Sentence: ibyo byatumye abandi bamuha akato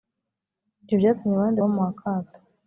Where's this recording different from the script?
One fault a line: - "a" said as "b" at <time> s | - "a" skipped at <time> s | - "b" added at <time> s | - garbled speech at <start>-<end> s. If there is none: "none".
none